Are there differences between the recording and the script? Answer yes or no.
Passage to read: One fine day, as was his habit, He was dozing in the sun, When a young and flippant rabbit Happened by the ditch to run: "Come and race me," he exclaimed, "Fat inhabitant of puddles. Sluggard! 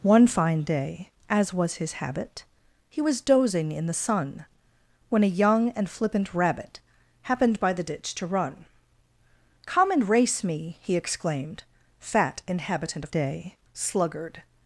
yes